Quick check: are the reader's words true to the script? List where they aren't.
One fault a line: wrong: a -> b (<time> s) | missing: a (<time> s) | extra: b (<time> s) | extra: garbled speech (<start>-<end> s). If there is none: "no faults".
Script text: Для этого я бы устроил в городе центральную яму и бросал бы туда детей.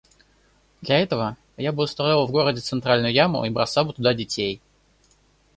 no faults